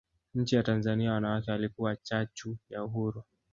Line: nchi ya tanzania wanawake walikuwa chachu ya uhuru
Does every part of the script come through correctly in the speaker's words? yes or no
yes